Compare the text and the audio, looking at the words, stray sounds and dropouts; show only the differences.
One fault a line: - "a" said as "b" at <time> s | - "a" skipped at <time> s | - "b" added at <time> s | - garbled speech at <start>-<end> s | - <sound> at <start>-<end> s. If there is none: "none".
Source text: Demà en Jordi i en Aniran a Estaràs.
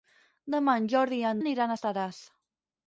none